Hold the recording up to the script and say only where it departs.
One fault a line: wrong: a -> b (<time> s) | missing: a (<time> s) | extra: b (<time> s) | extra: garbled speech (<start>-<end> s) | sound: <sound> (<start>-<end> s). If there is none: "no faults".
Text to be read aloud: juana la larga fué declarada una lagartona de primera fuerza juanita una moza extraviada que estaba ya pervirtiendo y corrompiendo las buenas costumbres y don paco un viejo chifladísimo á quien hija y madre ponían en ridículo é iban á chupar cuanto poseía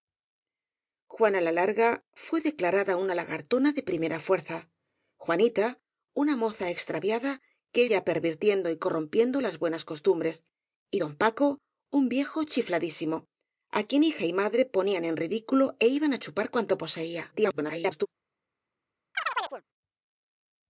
missing: estaba (7.8 s)
extra: garbled speech (17.3-18.1 s)
sound: chirp (19.1-19.6 s)